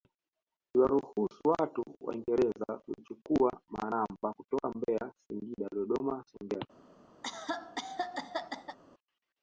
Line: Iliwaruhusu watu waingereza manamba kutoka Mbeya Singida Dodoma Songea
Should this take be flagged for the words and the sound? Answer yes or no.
yes